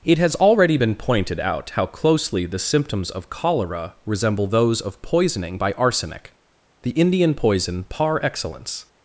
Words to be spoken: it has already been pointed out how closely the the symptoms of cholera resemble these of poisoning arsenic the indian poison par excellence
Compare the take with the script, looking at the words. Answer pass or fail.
fail